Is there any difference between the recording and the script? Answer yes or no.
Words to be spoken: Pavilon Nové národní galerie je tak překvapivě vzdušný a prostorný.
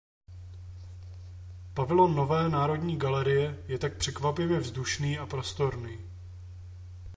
no